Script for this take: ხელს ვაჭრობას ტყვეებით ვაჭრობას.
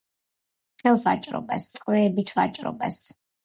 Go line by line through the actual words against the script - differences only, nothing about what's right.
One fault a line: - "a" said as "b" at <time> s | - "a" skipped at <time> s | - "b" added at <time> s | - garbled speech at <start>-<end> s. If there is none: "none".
none